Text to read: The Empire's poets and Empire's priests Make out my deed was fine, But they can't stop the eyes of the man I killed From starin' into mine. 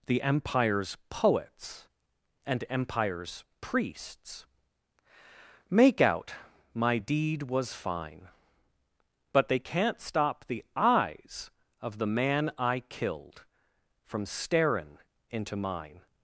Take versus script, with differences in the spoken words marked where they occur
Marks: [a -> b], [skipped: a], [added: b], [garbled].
The Empire's poets and Empire's priests Make out my deed was fine, But they can't stop the eyes of the man I killed From starin' into mine.